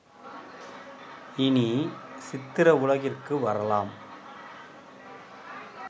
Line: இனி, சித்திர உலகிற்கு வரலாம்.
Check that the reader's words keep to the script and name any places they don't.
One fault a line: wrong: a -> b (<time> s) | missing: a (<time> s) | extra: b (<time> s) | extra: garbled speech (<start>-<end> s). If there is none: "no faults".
no faults